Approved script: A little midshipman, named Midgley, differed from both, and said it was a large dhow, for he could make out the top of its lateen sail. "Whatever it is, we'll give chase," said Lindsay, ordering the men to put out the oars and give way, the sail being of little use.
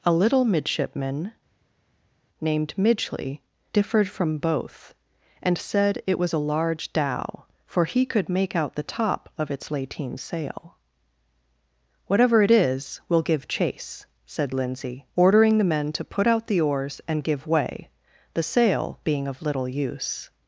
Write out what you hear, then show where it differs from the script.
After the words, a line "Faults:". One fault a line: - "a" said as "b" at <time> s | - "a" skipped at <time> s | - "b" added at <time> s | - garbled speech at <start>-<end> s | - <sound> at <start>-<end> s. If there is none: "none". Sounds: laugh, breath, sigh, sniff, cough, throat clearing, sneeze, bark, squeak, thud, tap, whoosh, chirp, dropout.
A little midshipman, named Midgley, differed from both, and said it was a large dhow, for he could make out the top of its lateen sail. "Whatever it is, we'll give chase," said Lindsay, ordering the men to put out the oars and give way, the sail being of little use.
Faults:
none